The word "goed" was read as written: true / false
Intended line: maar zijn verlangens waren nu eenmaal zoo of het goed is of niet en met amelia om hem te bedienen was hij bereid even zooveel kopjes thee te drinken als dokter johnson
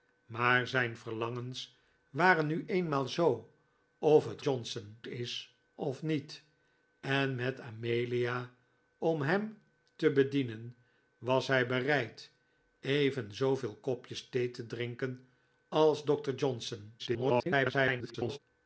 false